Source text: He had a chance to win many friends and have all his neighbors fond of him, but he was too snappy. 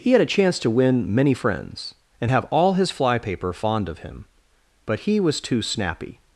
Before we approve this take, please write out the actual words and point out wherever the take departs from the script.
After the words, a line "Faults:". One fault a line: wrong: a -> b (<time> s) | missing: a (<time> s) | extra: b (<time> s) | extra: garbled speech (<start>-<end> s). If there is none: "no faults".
He had a chance to win many friends and have all his flypaper fond of him, but he was too snappy.
Faults:
wrong: neighbors -> flypaper (2.9 s)